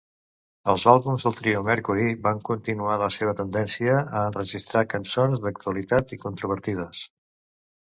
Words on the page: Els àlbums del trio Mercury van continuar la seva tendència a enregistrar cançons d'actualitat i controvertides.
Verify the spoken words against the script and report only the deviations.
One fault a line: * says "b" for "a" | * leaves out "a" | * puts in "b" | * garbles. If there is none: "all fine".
all fine